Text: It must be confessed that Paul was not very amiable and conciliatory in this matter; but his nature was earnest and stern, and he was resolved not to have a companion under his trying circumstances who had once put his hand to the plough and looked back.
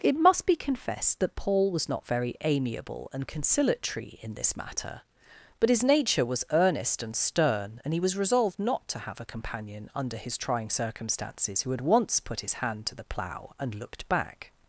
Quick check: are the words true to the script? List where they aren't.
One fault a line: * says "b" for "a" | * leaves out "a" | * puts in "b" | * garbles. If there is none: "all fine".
all fine